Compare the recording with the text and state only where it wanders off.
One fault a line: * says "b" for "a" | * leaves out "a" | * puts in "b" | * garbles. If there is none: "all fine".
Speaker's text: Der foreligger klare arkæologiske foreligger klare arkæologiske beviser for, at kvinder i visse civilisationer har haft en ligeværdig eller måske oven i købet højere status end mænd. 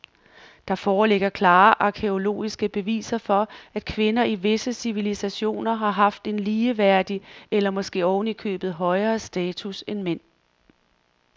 * leaves out "foreligger klare arkæologiske"